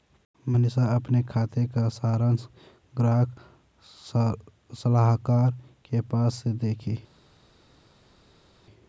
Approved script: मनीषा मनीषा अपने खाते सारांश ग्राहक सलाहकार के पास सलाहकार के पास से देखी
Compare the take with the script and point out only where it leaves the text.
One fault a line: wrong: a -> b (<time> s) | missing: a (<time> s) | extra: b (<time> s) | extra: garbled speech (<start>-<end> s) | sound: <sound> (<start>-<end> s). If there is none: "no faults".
missing: मनीषा (0.8 s)
extra: का (1.7 s)
missing: सलाहकार के पास (6.4 s)